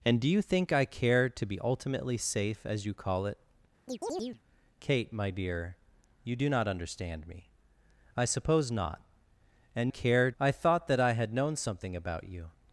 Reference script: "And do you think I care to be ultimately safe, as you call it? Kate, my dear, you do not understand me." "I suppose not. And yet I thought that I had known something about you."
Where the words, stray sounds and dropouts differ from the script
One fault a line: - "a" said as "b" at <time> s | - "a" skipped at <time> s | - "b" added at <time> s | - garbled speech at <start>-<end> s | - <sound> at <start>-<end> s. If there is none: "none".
- chirp at 3.9-4.4 s
- "yet" said as "care" at 9.9 s